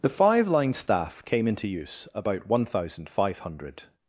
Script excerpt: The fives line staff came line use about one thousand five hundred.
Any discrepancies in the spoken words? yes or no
yes